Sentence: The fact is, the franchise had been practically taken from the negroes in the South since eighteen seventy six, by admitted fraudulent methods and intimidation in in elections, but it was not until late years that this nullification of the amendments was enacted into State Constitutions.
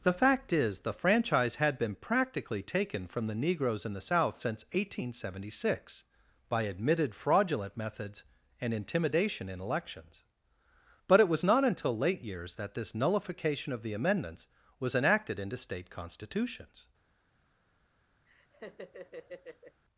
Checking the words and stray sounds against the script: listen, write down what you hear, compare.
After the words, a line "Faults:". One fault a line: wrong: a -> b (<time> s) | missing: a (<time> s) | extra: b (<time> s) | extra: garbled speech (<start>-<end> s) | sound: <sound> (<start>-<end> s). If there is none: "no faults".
The fact is, the franchise had been practically taken from the negroes in the South since eighteen seventy six, by admitted fraudulent methods and intimidation in elections, but it was not until late years that this nullification of the amendments was enacted into State Constitutions.
Faults:
missing: in (9.6 s)
sound: laugh (18.3-19.8 s)